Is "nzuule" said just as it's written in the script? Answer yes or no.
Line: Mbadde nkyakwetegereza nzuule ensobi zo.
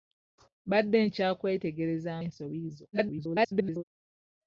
no